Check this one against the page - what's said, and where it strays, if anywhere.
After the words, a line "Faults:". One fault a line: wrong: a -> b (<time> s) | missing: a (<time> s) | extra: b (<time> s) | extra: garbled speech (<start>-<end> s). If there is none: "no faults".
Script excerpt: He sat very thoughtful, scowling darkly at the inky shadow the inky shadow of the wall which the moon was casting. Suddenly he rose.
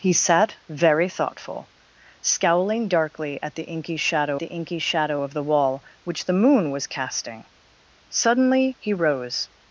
He sat very thoughtful, scowling darkly at the inky shadow the inky shadow of the wall which the moon was casting. Suddenly he rose.
Faults:
no faults